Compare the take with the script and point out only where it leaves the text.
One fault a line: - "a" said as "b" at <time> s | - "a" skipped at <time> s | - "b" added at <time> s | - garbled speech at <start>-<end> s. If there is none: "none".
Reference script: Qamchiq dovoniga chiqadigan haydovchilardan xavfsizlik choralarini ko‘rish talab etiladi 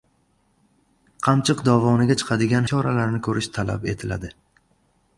- "haydovchilardan xavfsizlik" skipped at 2.7 s